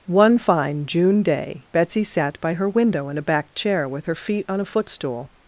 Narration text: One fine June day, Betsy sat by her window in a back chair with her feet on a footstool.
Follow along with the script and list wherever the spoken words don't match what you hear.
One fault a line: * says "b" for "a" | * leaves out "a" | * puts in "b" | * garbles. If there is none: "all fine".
all fine